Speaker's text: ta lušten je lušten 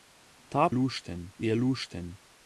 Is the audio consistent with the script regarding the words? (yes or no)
yes